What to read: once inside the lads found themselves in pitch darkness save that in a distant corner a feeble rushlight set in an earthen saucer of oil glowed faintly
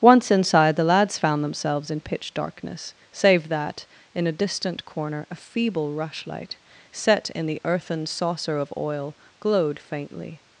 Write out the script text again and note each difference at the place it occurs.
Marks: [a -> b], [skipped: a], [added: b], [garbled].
once inside the lads found themselves in pitch darkness save that in a distant corner a feeble rushlight set in [an -> the] earthen saucer of oil glowed faintly